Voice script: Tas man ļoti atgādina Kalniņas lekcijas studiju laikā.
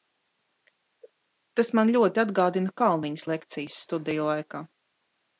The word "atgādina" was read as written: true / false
true